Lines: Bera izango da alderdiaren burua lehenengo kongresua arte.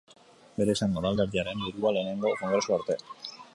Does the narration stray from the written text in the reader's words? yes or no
no